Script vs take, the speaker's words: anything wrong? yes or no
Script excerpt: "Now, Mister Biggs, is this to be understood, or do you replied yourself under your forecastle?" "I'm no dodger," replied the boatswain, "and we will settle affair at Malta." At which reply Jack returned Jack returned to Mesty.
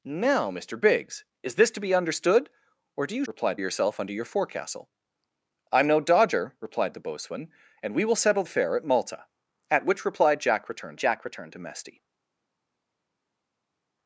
no